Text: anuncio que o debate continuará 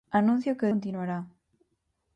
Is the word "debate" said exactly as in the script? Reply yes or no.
no